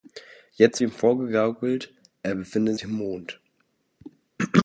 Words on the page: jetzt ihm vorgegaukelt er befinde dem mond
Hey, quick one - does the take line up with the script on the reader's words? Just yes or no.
yes